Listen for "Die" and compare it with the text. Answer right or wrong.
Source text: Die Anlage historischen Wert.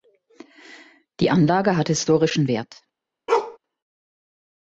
right